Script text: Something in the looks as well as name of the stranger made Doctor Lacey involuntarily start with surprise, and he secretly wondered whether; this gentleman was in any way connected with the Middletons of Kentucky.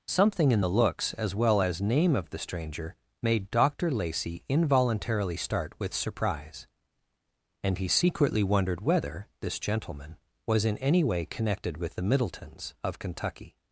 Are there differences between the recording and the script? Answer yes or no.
no